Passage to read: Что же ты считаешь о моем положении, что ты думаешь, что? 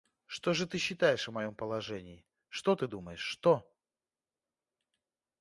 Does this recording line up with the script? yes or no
yes